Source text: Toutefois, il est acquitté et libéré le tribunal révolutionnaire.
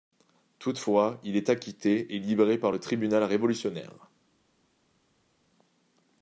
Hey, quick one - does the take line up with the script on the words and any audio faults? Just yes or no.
no